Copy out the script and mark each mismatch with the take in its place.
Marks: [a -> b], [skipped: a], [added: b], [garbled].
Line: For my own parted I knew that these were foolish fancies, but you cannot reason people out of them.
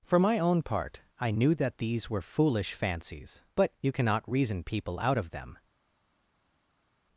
For my own [parted -> part] I knew that these were foolish fancies, but you cannot reason people out of them.